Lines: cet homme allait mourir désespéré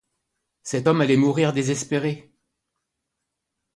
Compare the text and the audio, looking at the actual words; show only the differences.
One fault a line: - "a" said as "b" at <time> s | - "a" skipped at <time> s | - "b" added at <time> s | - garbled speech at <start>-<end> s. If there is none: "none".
none